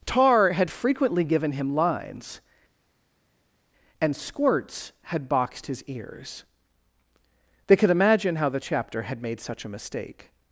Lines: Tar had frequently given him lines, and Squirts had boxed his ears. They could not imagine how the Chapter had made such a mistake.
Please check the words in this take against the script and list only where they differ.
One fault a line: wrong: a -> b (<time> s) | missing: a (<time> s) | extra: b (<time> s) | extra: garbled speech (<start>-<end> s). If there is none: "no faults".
missing: not (7.9 s)